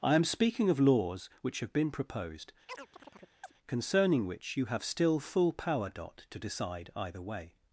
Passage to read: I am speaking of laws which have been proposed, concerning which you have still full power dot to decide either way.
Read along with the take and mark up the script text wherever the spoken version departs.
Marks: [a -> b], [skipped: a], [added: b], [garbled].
I am speaking of laws which have been proposed, concerning which you have still full power dot to decide either way.